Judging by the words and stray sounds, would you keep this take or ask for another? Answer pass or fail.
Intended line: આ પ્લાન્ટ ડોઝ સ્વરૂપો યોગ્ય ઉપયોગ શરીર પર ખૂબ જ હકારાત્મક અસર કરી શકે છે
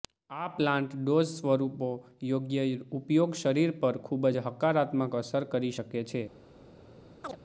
fail